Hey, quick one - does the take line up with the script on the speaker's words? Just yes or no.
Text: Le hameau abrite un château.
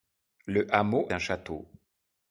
no